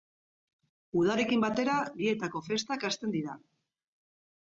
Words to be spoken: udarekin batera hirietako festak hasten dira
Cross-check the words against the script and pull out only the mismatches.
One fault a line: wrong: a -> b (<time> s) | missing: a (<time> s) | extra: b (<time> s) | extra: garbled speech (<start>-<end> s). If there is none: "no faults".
no faults